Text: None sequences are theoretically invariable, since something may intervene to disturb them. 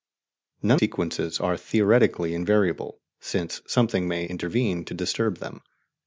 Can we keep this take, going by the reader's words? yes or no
yes